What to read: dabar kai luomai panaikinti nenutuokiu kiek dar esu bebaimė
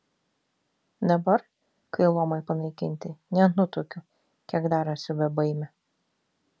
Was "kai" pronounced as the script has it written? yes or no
yes